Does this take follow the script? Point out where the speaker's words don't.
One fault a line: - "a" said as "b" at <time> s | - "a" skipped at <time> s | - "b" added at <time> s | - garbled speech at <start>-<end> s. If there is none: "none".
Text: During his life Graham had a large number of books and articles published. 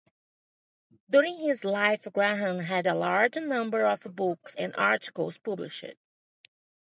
none